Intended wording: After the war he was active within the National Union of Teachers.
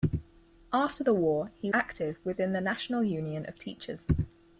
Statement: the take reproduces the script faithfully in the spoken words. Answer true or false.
false